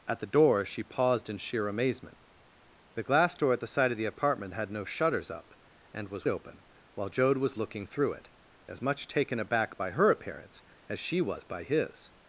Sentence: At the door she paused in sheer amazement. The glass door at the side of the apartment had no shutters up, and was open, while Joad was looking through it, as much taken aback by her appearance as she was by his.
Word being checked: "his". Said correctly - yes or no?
yes